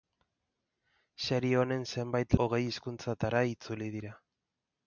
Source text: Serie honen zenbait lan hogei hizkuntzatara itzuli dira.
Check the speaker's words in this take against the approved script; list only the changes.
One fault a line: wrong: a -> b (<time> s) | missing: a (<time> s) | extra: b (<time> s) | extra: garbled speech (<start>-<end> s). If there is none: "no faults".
missing: lan (2.4 s)